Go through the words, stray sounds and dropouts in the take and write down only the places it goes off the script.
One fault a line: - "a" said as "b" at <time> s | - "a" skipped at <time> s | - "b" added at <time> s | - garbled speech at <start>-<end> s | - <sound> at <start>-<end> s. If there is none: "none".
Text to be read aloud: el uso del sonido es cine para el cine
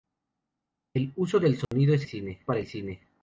- dropout at 1.6-1.7 s